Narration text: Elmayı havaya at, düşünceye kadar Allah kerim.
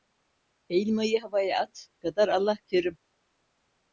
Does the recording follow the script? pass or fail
fail